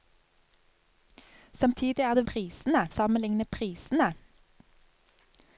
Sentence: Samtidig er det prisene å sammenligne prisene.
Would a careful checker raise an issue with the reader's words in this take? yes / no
no